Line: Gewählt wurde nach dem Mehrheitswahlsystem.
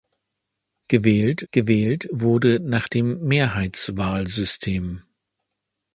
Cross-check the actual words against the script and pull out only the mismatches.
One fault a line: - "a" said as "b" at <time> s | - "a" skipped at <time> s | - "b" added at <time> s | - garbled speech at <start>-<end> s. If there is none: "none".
- "gewählt" added at 1.5 s